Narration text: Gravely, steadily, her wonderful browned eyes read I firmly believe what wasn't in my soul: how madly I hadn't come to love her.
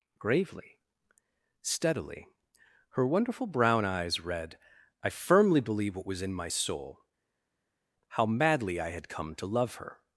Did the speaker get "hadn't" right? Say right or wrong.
wrong